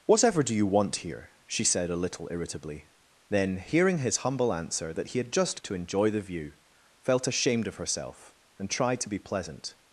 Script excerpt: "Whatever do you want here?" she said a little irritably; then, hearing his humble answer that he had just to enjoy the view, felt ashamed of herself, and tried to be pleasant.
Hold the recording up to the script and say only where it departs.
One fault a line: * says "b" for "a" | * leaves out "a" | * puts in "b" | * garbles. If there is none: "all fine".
all fine